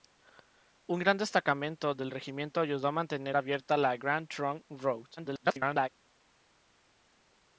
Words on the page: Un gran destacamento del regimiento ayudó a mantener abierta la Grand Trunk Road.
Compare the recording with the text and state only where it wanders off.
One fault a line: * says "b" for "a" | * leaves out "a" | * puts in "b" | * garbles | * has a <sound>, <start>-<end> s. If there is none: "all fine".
* garbles